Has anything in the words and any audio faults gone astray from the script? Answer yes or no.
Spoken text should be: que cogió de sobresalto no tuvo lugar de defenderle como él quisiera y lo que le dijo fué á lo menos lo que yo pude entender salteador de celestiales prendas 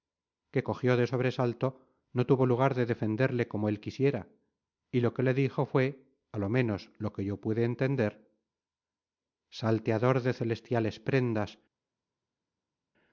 no